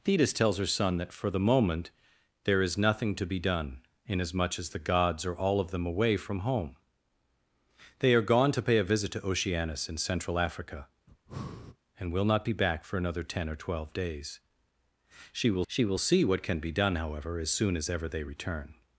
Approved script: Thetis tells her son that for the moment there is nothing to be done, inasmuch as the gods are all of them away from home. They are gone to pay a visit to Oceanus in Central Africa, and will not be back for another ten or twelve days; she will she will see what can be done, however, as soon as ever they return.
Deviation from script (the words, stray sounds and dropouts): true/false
true